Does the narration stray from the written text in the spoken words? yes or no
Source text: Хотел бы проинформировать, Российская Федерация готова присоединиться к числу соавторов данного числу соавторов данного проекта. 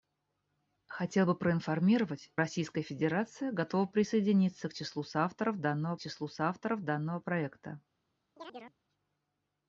no